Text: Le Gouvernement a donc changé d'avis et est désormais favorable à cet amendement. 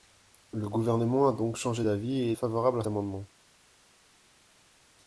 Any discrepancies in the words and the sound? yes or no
yes